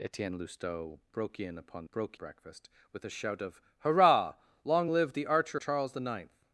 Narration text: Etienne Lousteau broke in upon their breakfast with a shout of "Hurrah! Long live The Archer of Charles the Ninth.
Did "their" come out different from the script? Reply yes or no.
yes